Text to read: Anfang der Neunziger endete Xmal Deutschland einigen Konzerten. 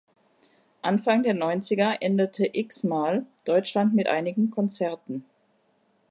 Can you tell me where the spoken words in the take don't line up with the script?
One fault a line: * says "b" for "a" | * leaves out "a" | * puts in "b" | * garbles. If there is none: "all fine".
* puts in "mit"